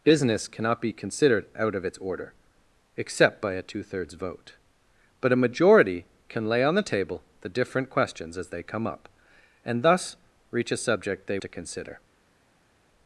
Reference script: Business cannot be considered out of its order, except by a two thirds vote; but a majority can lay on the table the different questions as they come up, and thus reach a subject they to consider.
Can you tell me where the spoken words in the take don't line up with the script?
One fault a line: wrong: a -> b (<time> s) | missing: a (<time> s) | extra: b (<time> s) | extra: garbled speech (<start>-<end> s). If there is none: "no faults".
no faults